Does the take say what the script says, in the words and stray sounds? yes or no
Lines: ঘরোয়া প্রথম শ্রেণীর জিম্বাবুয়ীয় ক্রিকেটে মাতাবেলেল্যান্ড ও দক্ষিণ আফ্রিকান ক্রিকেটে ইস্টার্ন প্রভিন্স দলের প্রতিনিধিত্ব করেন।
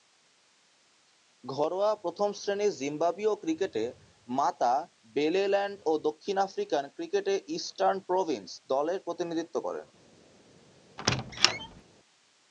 no